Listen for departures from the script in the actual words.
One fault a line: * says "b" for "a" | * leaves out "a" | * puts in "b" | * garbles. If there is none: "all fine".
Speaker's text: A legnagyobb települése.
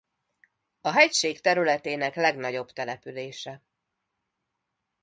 * puts in "hegység területének"